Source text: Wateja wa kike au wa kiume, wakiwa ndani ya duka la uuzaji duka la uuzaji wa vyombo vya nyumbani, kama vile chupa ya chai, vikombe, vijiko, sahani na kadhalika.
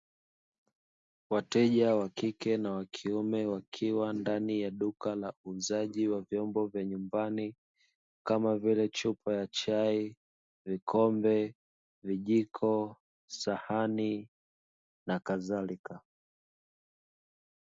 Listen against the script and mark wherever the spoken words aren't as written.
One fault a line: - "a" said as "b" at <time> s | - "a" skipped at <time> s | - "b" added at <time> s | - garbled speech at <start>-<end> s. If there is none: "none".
- "au" said as "na" at 2.6 s
- "duka la uuzaji" skipped at 6.1 s